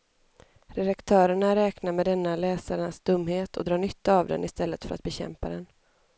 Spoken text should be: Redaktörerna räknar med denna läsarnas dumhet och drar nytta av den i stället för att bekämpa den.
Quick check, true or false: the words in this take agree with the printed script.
true